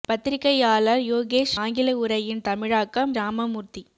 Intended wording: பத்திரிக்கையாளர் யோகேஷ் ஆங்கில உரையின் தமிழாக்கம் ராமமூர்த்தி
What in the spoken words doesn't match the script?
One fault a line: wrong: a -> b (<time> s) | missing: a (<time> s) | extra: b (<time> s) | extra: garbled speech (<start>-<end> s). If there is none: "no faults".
no faults